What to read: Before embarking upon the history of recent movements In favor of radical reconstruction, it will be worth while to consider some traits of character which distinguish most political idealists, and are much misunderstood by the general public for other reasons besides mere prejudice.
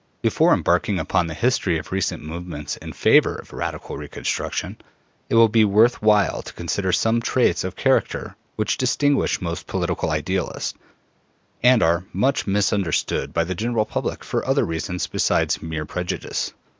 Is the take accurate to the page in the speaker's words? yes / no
yes